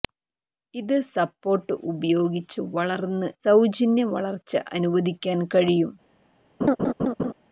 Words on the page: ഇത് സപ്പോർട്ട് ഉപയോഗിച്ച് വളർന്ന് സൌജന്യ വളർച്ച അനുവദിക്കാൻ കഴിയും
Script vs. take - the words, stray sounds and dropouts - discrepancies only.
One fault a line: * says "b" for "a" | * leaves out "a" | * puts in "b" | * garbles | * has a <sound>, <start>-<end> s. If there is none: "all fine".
* has a laugh, 6.6-7.3 s